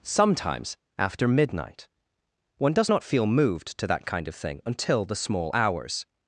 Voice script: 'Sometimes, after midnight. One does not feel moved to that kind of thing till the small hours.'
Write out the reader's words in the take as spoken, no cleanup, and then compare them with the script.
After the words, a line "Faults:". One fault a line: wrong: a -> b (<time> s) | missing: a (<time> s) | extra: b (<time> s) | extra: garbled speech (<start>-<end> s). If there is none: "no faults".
'Sometimes, after midnight. One does not feel moved to that kind of thing until the small hours.'
Faults:
wrong: till -> until (4.6 s)